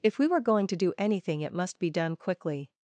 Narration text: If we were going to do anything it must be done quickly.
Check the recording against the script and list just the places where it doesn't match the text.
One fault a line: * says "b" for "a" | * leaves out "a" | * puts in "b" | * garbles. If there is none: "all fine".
all fine